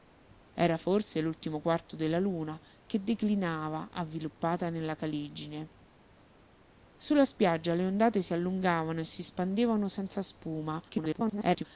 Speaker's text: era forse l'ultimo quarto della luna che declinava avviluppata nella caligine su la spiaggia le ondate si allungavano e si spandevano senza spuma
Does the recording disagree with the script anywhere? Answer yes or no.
yes